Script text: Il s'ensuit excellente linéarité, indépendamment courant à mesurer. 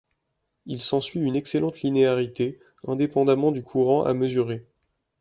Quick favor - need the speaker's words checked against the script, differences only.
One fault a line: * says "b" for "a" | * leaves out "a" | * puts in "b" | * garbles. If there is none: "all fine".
* puts in "une"
* puts in "du"